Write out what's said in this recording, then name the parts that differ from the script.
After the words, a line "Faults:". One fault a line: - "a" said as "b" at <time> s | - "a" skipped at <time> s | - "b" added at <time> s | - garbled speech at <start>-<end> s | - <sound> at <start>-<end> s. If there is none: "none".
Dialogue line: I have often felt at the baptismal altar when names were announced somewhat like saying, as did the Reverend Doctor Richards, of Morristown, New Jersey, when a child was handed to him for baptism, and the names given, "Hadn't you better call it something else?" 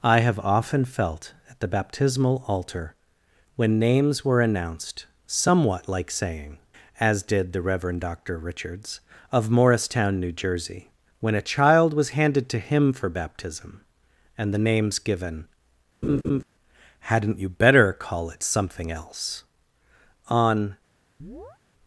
I have often felt at the baptismal altar when names were announced somewhat like saying, as did the Reverend Doctor Richards, of Morristown, New Jersey, when a child was handed to him for baptism, and the names given, "Hadn't you better call it something else?" On
Faults:
- laugh at 16.0-16.4 s
- "On" added at 20.3 s
- chirp at 21.2-21.6 s